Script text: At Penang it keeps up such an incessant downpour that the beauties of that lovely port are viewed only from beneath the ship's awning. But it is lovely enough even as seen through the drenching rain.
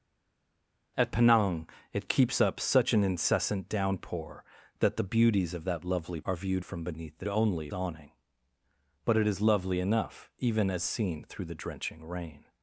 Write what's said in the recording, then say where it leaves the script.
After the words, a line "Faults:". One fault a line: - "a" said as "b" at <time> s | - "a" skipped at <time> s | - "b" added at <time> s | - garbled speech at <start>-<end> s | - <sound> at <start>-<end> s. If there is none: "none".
At Penang it keeps up such an incessant downpour that the beauties of that lovely are viewed from beneath the only awning. But it is lovely enough even as seen through the drenching rain.
Faults:
- "port" skipped at 6.2 s
- "only" skipped at 6.7 s
- "ship's" said as "only" at 7.3 s